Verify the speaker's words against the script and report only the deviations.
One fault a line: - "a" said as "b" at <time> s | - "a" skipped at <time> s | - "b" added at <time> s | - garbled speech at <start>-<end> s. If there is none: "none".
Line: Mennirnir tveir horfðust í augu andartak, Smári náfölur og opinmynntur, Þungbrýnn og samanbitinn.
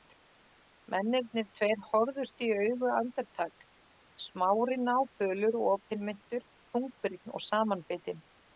none